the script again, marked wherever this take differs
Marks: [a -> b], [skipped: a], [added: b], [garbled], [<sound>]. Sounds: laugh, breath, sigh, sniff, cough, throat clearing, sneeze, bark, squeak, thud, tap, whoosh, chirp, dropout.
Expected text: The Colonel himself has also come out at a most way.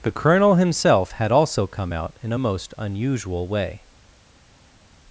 The Colonel himself [has -> had] also come out [at -> in] a most [added: unusual] way.